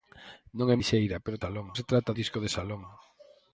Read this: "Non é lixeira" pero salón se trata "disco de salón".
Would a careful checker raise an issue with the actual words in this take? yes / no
no